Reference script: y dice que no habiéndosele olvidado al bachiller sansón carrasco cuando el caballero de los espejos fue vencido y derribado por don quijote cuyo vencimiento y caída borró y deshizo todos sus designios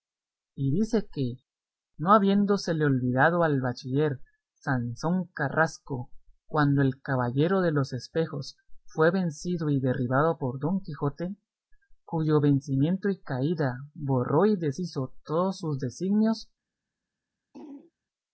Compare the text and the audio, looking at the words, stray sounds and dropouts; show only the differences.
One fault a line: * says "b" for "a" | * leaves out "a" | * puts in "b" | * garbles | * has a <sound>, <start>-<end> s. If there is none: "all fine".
* has a throat clearing, 17.5-17.9 s